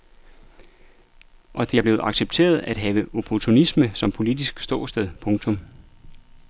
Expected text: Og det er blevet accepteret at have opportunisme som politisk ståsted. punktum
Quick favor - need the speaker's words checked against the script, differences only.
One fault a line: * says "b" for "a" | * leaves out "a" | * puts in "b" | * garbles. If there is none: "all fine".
all fine